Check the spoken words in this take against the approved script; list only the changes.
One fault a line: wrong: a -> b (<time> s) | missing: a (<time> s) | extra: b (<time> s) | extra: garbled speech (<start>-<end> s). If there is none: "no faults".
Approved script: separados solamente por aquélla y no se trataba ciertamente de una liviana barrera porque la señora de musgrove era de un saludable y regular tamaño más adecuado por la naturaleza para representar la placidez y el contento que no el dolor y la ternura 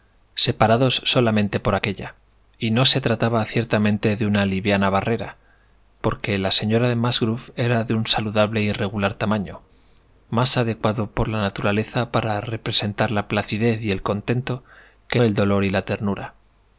missing: no (15.2 s)